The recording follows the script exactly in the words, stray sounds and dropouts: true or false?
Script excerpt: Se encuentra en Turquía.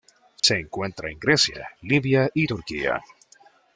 false